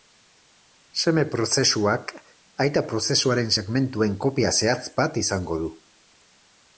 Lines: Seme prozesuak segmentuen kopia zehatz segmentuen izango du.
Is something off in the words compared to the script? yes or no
yes